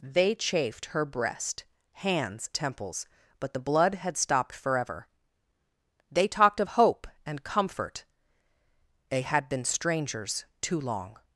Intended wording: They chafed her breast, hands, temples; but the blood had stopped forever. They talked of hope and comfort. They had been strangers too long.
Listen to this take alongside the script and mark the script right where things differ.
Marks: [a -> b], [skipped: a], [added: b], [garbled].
They chafed her breast, hands, temples; but the blood had stopped forever. They talked of hope and comfort. They had been strangers too long.